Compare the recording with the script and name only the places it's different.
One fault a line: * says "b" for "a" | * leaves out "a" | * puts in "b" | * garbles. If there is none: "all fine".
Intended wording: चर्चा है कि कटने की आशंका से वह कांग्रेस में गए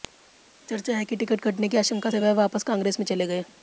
* puts in "टिकट"
* puts in "वापस"
* puts in "चले"